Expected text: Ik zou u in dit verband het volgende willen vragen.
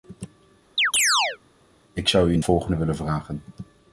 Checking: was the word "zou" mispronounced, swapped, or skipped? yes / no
no